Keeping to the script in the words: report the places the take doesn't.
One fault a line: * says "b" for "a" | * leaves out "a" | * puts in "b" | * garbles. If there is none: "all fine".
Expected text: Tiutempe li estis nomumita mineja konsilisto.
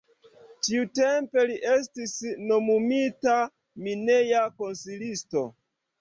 all fine